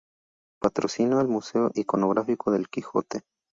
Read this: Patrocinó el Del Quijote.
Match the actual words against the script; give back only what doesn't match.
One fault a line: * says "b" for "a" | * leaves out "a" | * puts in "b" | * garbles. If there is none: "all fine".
* puts in "Museo Iconográfico"